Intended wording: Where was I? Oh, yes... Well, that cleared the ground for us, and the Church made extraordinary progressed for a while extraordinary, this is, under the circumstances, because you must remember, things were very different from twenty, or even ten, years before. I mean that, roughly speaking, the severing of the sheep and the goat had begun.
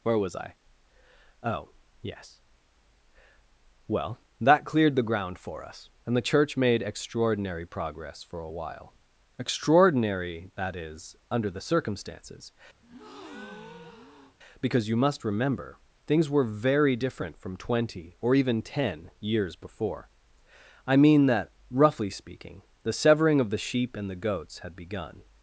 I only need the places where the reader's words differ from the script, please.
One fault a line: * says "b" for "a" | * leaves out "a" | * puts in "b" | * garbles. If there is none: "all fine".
* says "progress" for "progressed"
* says "that" for "this"
* says "goats" for "goat"